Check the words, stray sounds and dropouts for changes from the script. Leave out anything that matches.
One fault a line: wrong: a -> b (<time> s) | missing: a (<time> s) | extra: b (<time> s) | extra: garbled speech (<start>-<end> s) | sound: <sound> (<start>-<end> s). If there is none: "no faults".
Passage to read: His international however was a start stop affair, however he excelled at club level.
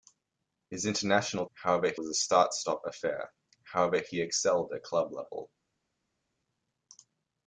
no faults